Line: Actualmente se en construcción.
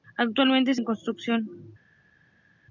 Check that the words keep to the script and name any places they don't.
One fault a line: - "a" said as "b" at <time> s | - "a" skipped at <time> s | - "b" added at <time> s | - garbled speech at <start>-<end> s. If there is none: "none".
none